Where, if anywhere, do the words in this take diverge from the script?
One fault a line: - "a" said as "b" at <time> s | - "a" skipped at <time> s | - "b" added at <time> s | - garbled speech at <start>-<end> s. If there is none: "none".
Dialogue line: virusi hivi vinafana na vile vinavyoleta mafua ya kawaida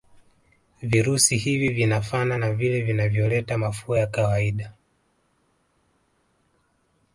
none